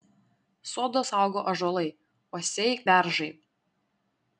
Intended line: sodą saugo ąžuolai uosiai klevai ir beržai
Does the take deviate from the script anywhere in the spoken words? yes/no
yes